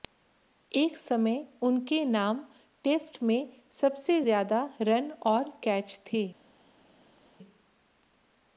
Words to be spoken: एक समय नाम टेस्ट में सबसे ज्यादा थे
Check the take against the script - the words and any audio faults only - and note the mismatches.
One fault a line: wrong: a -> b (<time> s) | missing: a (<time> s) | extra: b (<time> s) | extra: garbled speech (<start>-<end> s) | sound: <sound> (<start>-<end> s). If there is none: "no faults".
extra: उनके (1.6 s)
extra: रन और कैच (4.8 s)